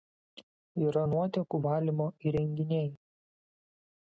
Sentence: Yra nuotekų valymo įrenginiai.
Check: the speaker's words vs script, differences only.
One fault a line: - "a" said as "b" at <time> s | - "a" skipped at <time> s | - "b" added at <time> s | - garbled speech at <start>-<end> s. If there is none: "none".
none